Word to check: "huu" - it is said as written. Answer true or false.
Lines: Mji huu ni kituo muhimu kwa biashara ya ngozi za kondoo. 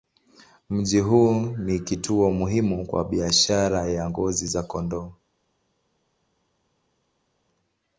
true